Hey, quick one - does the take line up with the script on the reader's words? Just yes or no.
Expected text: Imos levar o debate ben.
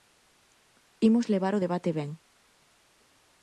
yes